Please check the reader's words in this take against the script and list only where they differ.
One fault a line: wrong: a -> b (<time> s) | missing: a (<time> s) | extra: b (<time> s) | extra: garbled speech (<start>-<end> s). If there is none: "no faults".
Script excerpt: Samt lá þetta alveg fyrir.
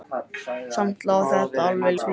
no faults